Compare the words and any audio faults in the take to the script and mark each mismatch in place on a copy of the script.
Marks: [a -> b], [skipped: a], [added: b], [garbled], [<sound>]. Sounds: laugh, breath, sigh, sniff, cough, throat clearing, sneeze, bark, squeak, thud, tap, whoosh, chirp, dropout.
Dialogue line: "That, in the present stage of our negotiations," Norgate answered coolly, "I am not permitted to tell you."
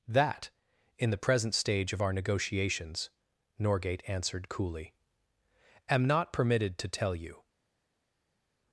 "That, in the present stage of our negotiations," Norgate answered coolly, [skipped: "I] am not permitted to tell you."